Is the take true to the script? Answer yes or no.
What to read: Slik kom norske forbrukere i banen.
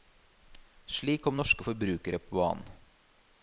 no